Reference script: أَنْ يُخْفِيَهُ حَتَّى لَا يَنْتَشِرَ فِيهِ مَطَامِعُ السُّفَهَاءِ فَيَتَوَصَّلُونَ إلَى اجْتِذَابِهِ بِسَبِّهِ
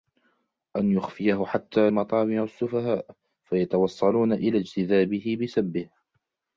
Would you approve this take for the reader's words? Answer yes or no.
no